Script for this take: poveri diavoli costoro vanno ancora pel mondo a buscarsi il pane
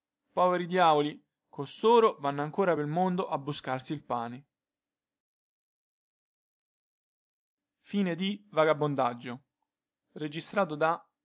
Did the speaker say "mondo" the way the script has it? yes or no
yes